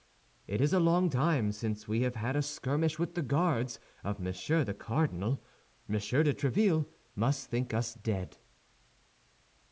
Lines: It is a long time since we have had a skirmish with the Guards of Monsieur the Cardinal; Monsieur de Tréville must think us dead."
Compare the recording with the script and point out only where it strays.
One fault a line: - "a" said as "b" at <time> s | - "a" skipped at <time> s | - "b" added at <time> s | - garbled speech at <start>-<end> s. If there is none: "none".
none